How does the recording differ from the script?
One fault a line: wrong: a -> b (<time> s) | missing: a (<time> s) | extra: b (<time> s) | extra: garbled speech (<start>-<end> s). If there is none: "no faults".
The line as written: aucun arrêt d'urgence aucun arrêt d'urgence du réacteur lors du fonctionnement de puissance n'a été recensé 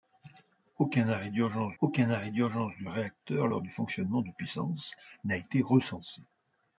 no faults